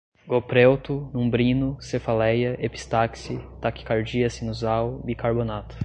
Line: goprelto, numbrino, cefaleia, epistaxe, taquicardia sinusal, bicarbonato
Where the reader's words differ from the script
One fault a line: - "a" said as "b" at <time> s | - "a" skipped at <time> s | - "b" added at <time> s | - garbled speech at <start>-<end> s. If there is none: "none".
none